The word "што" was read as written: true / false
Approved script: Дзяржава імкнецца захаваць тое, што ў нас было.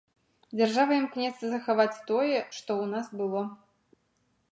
true